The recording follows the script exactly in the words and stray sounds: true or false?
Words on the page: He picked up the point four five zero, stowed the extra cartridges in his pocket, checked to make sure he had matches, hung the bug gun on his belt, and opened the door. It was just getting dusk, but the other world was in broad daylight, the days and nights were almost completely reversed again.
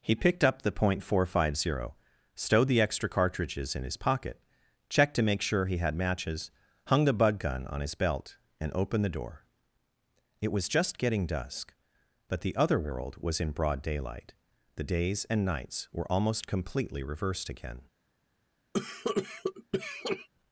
false